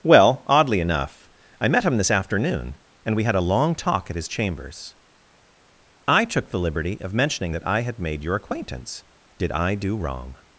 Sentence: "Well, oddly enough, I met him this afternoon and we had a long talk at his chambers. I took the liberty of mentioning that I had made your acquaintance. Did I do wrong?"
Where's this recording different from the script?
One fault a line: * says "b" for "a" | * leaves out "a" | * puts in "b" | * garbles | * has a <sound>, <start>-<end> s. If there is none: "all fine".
all fine